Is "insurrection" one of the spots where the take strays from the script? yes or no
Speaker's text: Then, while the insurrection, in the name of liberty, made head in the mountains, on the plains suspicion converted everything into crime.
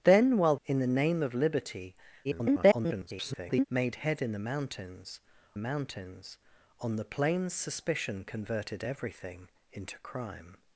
yes